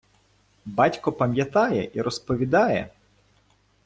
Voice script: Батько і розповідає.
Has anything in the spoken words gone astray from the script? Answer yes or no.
yes